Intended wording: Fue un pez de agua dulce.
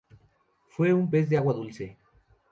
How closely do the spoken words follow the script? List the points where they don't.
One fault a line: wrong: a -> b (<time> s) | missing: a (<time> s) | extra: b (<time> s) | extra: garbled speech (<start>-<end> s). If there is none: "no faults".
no faults